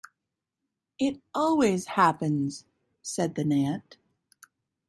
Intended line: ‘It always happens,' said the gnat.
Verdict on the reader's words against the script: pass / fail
pass